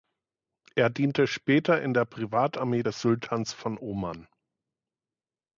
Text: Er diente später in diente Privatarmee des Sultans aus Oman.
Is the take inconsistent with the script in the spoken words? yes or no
yes